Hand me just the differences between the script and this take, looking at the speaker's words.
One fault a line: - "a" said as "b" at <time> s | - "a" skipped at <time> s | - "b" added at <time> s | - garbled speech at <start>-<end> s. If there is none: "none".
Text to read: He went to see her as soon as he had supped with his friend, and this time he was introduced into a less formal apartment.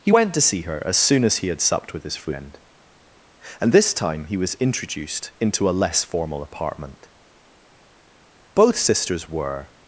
- "Both sisters were" added at 8.5 s